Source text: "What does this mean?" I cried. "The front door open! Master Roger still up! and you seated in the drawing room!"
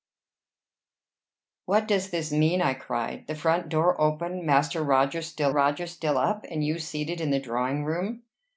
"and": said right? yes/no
yes